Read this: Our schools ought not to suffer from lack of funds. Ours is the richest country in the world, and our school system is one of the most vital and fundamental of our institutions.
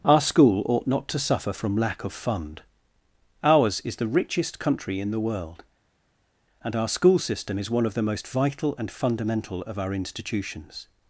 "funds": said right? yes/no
no